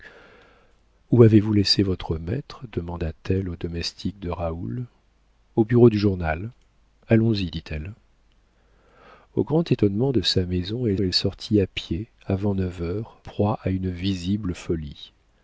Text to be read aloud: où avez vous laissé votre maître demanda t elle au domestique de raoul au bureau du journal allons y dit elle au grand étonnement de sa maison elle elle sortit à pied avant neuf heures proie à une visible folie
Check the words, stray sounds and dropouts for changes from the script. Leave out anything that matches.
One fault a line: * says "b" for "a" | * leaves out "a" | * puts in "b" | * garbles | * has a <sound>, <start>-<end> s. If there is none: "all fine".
all fine